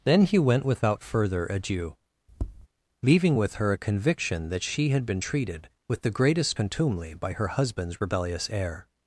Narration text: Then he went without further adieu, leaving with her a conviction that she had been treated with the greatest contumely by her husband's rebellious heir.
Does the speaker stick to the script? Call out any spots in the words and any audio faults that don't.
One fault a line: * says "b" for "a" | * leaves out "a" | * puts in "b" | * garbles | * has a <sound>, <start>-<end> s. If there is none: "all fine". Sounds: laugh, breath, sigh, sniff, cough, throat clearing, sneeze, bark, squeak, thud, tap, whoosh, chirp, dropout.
* has a tap, 2.3-2.7 s